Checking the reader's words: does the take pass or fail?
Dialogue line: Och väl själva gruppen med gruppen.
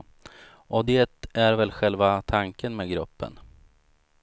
fail